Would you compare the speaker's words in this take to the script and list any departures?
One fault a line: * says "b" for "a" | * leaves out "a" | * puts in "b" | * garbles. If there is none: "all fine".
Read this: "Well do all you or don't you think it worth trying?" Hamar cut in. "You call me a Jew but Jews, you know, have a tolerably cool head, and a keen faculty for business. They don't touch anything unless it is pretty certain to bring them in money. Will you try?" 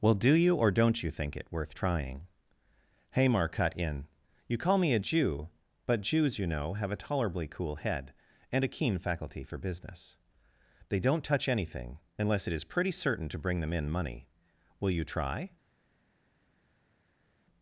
* leaves out "all"